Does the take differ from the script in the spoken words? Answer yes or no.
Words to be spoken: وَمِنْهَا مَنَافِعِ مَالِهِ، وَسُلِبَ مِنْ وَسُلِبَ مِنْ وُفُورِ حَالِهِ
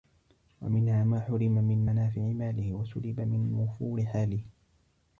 yes